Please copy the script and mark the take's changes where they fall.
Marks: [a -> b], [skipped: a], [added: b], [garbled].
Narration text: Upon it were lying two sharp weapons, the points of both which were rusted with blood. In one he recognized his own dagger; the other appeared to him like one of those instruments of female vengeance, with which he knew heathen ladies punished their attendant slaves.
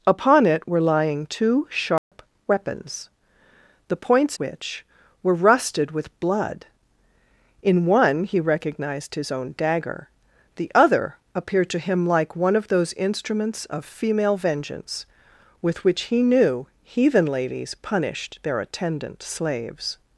Upon it were lying two sharp weapons, the points [skipped: of both] which were rusted with blood. In one he recognized his own dagger; the other appeared to him like one of those instruments of female vengeance, with which he knew heathen ladies punished their attendant slaves.